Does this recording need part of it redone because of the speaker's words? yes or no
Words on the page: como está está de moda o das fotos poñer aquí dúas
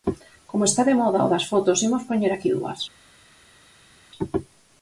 yes